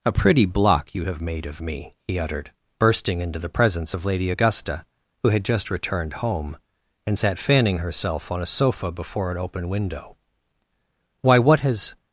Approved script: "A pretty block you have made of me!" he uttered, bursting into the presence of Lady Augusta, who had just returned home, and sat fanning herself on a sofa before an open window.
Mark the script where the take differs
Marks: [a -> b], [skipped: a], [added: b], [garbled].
"A pretty block you have made of me!" he uttered, bursting into the presence of Lady Augusta, who had just returned home, and sat fanning herself on a sofa before an open window. [added: Why what has]